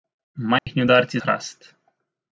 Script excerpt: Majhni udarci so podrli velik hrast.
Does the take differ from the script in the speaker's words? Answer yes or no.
yes